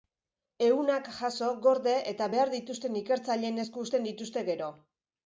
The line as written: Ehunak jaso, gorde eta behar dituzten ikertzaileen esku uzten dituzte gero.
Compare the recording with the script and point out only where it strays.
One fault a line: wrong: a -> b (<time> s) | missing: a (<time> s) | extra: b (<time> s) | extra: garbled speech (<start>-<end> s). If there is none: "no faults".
no faults